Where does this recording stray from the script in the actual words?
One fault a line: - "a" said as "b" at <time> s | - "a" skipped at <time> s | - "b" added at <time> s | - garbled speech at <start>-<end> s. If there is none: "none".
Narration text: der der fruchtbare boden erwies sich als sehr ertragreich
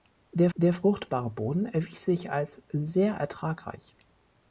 none